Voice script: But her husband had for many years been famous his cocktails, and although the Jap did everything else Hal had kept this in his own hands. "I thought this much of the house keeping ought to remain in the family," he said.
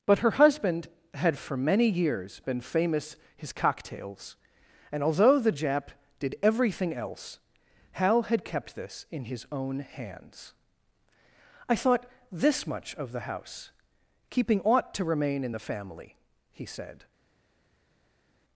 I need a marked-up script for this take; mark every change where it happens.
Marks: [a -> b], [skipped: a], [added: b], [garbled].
But her husband had for many years been famous his cocktails, and although the Jap did everything else Hal had kept this in his own hands. "I thought this much of the house keeping ought to remain in the family," he said.